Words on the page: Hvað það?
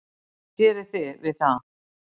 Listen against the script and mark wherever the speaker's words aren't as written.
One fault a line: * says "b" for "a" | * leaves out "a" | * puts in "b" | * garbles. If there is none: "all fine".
* puts in "gerið þið við"